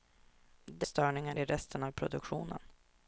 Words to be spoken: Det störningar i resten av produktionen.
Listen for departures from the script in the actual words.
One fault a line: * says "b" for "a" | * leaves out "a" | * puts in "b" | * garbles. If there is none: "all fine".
all fine